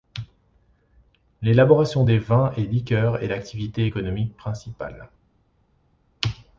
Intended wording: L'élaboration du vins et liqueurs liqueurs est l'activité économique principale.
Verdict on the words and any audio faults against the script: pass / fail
fail